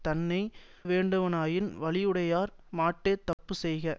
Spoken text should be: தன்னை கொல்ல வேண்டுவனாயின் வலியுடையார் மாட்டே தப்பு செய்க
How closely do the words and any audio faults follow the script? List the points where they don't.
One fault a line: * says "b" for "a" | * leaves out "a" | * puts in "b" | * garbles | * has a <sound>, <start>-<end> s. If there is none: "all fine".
* leaves out "கொல்ல"
* has a dropout, 3.3-3.4 s